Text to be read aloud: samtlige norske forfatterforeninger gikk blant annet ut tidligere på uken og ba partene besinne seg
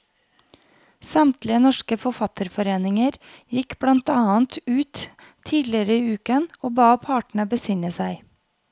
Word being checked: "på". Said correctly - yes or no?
no